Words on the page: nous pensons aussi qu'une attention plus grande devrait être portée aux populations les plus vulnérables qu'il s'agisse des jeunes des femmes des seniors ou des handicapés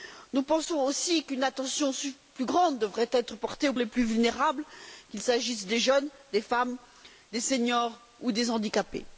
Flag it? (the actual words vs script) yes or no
yes